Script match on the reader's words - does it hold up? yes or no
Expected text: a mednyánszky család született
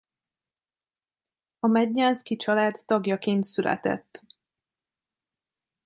no